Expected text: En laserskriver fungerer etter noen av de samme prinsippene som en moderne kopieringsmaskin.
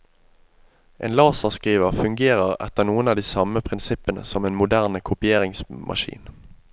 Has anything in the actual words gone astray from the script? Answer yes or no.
no